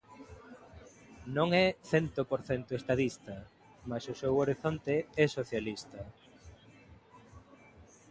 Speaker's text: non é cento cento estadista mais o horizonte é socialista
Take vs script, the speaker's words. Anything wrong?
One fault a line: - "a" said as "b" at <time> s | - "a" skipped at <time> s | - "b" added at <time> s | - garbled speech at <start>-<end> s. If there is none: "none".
- "por" added at 2.3 s
- "seu" added at 4.2 s